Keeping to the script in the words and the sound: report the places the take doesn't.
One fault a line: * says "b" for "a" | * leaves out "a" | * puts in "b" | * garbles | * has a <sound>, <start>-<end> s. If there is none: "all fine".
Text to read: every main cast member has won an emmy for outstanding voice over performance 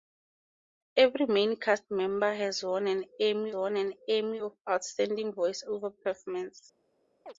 * puts in "won an emmy"
* has a chirp, 7.3-7.3 s